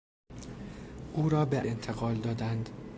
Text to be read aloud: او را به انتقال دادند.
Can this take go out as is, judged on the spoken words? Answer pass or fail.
pass